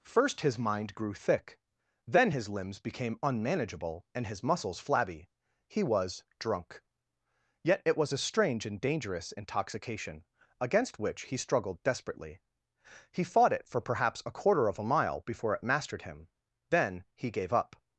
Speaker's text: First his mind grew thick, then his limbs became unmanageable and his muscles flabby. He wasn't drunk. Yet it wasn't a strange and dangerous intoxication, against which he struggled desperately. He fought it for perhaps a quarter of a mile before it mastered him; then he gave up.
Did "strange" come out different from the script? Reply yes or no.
no